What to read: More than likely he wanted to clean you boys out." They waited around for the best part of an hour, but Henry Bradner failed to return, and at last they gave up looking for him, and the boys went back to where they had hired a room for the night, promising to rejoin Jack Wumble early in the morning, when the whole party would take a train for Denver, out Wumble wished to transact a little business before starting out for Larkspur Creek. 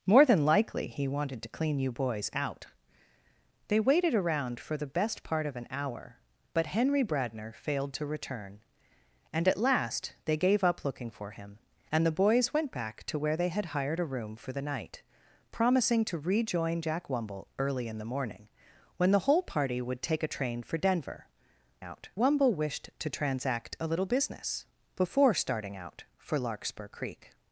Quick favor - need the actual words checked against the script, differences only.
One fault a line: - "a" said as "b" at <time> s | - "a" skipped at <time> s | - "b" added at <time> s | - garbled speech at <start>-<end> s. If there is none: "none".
none